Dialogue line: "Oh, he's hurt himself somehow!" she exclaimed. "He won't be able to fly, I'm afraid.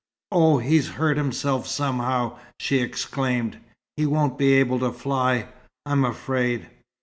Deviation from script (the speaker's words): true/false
false